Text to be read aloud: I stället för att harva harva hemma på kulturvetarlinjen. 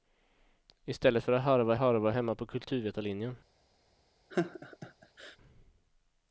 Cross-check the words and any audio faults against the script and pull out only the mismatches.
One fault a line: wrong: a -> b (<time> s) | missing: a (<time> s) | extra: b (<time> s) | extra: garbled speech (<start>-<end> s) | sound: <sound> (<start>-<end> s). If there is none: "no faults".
sound: laugh (4.3-5.4 s)